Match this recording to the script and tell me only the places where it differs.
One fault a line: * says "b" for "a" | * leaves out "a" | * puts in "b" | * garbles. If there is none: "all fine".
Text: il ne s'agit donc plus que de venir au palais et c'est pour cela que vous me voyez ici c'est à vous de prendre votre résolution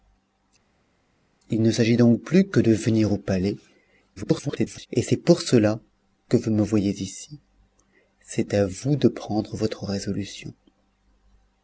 * garbles